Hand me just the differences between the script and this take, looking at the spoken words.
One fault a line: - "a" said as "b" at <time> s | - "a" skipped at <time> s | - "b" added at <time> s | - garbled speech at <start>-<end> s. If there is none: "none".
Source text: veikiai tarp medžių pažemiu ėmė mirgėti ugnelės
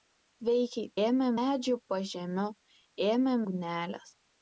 - "tarp" said as "ėmė" at 1.0 s
- "mirgėti" skipped at 3.4 s